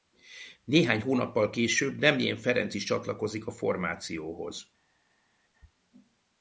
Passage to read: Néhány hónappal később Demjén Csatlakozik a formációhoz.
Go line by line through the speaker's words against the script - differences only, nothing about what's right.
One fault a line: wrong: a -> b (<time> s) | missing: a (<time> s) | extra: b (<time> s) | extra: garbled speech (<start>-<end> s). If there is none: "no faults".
extra: Ferenc is (2.4 s)